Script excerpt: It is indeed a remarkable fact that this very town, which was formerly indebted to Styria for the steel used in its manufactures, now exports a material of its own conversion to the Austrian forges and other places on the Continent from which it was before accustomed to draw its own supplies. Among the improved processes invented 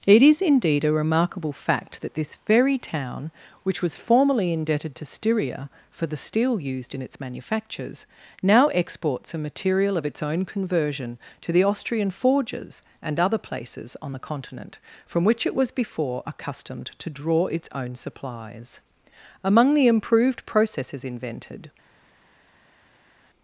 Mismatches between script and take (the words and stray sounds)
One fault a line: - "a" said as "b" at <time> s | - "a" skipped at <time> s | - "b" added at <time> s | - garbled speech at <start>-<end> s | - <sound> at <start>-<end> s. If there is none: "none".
none